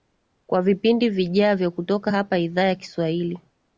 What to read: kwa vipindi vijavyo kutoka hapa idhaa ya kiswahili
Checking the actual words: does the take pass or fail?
pass